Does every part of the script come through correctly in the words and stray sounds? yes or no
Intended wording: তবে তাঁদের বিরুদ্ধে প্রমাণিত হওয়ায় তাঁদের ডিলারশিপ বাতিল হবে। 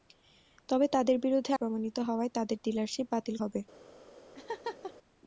no